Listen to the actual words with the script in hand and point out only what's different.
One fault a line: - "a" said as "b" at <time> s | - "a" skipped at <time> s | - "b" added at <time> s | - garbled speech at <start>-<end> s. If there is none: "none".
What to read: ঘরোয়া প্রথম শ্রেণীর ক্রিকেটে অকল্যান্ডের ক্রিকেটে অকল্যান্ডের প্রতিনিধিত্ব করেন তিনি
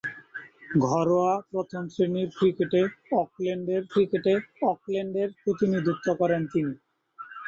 none